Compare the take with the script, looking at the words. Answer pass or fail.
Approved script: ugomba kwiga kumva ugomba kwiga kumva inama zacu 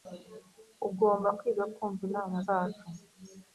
fail